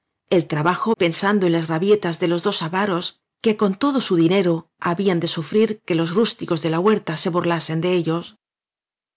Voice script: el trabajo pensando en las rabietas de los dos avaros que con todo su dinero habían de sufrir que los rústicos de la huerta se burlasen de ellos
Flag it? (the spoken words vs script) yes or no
no